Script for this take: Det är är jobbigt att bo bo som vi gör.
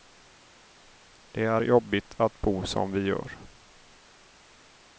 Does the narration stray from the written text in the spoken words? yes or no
yes